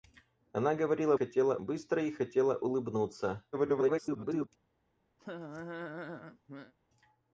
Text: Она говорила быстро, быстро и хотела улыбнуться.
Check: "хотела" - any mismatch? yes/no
no